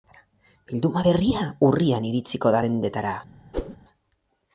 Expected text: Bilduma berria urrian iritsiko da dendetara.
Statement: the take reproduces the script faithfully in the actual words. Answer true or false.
true